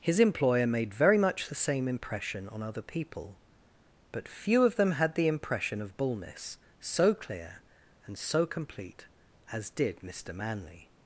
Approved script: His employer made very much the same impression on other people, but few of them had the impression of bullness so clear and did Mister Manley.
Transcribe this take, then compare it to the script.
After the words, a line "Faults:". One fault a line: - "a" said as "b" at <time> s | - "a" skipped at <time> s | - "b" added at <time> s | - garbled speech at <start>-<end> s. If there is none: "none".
His employer made very much the same impression on other people, but few of them had the impression of bullness so clear and so complete as did Mister Manley.
Faults:
- "so complete as" added at 8.2 s